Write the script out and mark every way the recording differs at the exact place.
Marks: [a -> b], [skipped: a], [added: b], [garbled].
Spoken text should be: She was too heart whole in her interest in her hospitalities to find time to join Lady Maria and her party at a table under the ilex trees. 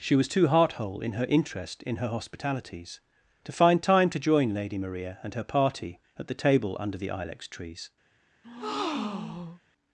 She was too heart whole in her interest in her hospitalities to find time to join Lady Maria and her party at [a -> the] table under the ilex trees.